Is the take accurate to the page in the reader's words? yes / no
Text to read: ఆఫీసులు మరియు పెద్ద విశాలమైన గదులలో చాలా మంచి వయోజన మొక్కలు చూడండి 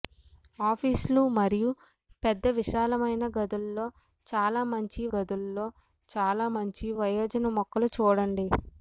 no